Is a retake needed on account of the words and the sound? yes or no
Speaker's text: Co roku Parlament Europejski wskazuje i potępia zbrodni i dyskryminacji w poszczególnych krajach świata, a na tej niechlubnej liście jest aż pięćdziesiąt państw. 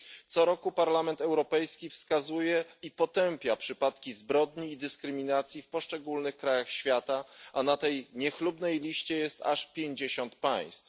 yes